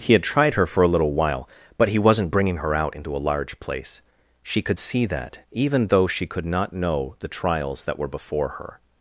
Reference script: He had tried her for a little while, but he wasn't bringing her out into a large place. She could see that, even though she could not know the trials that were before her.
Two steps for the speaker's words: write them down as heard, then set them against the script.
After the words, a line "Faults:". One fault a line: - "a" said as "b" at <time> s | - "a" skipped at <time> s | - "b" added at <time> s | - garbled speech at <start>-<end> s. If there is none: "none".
He had tried her for a little while, but he wasn't bringing her out into a large place. She could see that, even though she could not know the trials that were before her.
Faults:
none